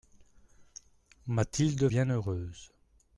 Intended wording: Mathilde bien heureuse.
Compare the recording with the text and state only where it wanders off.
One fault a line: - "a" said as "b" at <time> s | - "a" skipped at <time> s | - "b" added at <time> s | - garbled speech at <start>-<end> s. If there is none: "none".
none